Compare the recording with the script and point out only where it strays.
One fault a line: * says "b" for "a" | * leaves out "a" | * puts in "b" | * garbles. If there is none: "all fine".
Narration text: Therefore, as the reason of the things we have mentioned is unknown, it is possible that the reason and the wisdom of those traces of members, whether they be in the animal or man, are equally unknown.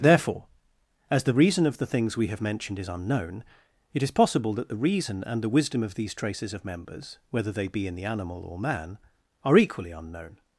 * says "these" for "those"